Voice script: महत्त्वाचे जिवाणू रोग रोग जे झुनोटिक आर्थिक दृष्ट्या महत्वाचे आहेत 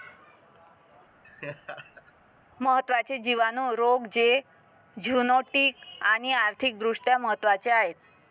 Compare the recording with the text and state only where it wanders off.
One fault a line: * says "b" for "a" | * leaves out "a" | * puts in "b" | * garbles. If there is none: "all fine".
* leaves out "रोग"
* puts in "आणि"